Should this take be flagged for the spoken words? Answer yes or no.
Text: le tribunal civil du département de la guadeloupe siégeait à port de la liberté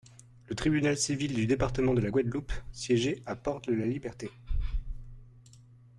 no